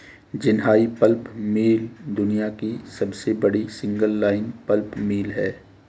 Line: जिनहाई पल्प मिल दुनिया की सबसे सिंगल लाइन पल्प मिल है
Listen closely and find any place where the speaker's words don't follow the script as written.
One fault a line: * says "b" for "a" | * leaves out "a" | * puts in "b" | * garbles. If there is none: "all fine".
* puts in "बड़ी"